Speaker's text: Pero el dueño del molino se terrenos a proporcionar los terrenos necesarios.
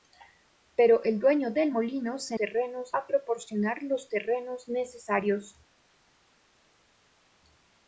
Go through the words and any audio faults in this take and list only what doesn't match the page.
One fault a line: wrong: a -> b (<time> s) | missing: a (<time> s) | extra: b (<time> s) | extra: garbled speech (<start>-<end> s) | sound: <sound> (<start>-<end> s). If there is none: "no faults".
no faults